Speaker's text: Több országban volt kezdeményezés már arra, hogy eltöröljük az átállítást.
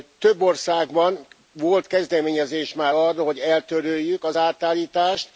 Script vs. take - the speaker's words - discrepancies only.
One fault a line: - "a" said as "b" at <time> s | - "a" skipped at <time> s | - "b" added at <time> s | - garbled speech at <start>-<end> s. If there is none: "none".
none